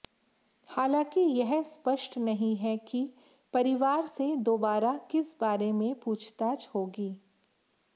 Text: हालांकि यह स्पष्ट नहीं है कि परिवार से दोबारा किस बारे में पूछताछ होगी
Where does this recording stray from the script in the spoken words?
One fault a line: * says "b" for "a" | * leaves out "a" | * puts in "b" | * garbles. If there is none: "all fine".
all fine